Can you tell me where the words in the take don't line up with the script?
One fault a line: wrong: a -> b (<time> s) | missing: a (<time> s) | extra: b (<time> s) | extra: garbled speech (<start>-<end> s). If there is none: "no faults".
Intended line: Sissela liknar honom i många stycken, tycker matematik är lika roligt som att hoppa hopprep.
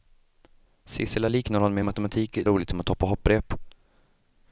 missing: många stycken tycker (1.8 s)
missing: lika (2.4 s)